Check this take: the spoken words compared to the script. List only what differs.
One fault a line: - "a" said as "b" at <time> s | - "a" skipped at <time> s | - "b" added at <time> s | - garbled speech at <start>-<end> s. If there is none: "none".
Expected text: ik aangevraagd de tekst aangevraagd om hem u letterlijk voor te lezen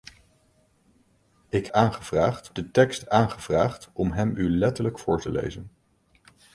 none